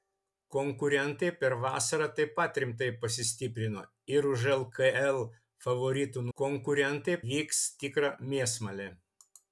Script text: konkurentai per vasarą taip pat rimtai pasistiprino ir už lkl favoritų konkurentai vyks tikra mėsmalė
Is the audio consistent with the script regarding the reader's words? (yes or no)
yes